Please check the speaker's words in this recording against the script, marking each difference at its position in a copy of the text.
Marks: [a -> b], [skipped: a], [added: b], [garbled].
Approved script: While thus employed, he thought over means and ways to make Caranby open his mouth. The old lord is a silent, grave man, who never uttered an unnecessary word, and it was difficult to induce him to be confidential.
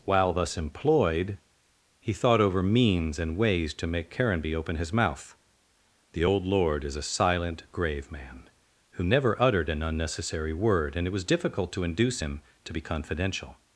While thus employed, he thought over means and ways to make Caranby open his mouth. The old lord is a silent, grave man, who never uttered an unnecessary word, and it was difficult to induce him to be confidential.